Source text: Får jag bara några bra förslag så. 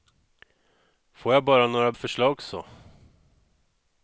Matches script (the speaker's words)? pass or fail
fail